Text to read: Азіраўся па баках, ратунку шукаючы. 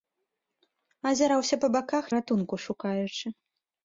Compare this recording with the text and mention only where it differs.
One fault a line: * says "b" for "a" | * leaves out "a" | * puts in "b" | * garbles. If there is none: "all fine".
all fine